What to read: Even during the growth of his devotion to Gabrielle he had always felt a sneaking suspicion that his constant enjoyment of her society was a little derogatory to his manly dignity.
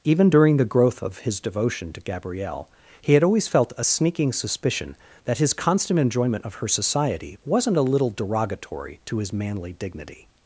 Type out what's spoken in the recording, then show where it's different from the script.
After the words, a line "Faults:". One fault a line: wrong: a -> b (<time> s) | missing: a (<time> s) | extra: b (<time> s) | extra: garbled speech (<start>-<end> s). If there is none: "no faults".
Even during the growth of his devotion to Gabrielle he had always felt a sneaking suspicion that his constant enjoyment of her society wasn't a little derogatory to his manly dignity.
Faults:
wrong: was -> wasn't (7.4 s)